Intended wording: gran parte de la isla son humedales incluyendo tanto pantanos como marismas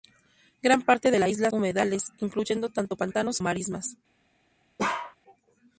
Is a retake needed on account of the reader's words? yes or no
yes